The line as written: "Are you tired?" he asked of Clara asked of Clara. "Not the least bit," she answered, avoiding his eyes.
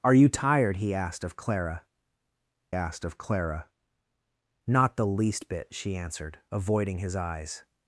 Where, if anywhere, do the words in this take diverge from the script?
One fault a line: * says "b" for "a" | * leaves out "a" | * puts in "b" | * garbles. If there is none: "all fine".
all fine